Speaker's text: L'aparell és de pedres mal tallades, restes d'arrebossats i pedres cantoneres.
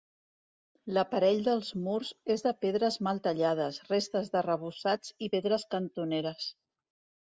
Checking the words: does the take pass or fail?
fail